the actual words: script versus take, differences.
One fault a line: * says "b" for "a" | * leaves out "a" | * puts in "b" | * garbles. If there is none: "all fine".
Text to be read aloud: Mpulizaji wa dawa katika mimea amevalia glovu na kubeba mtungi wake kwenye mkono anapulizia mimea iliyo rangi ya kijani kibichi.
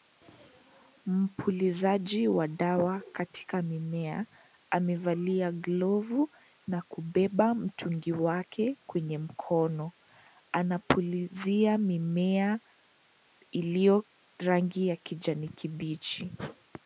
all fine